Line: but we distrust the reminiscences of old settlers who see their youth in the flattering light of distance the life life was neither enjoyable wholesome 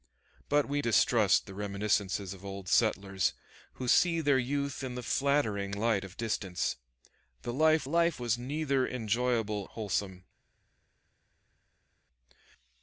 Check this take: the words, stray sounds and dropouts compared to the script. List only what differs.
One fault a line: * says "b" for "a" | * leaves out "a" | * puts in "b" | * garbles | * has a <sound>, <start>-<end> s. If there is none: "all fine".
all fine